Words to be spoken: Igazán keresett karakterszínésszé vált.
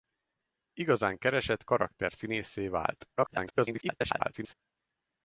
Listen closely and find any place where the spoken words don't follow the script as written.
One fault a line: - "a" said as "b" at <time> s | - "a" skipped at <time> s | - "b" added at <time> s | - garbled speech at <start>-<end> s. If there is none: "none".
- garbled speech at 3.2-4.5 s